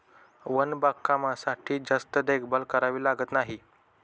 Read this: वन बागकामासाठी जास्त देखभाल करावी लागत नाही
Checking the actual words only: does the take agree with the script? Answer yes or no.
yes